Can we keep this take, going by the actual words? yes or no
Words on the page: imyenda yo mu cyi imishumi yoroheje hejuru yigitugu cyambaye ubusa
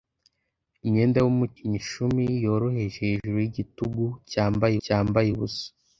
no